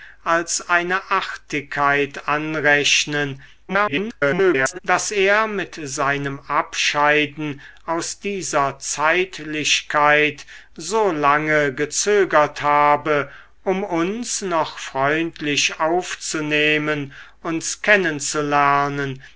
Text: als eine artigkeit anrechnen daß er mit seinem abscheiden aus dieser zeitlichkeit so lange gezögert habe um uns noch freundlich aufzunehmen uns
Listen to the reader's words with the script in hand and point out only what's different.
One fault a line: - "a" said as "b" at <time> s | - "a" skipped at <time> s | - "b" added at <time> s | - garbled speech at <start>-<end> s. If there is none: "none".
- garbled speech at 3.7-4.8 s